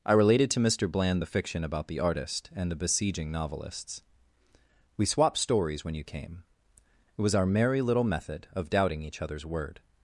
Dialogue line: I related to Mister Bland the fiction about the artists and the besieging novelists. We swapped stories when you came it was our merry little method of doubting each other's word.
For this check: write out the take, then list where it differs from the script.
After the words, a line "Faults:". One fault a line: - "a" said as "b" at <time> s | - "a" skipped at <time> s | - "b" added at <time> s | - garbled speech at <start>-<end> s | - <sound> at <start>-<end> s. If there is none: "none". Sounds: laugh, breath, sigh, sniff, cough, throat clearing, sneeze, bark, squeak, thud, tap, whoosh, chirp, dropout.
I related to Mister Bland the fiction about the artist and the besieging novelists. We swapped stories when you came it was our merry little method of doubting each other's word.
Faults:
- "artists" said as "artist" at 2.0 s